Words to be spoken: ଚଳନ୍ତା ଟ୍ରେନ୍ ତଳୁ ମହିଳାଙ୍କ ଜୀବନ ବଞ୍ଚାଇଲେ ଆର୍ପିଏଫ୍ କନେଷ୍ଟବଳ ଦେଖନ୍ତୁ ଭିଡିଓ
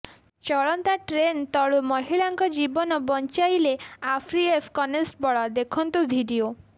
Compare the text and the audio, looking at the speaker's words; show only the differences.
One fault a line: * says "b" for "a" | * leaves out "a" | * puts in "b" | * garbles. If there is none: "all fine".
all fine